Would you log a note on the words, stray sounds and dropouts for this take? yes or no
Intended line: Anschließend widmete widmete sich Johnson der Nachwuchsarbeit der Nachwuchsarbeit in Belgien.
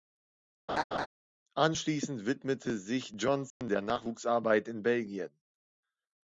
yes